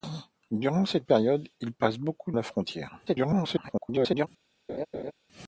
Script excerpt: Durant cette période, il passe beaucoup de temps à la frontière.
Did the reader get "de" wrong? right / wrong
wrong